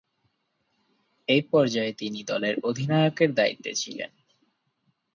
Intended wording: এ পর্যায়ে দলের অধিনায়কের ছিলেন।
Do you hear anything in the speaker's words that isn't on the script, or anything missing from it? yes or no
yes